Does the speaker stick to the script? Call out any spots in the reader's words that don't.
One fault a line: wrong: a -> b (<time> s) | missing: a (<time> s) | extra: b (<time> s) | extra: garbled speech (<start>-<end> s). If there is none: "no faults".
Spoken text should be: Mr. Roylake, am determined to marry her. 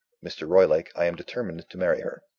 extra: I (0.9 s)